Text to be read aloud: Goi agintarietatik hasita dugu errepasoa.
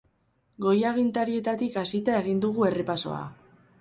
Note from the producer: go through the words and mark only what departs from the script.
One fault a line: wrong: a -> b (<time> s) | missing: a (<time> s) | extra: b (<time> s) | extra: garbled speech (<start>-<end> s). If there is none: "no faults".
extra: egin (2.2 s)